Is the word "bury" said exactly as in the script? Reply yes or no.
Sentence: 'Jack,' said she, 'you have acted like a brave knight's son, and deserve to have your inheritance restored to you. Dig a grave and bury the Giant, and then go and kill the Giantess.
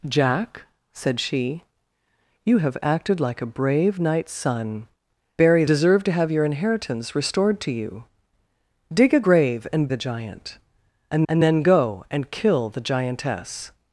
no